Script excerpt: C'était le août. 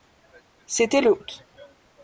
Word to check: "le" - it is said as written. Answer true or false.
true